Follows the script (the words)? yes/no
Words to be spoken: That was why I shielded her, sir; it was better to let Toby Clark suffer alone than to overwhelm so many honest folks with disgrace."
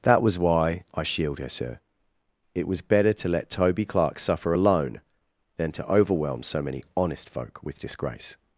no